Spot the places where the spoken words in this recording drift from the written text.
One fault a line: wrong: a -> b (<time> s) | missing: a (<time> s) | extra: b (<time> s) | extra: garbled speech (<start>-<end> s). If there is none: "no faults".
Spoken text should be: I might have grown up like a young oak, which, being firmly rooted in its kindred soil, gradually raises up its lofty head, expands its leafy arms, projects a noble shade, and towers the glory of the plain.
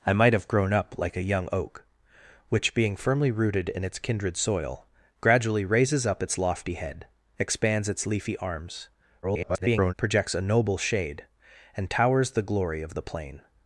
extra: garbled speech (9.2-9.9 s)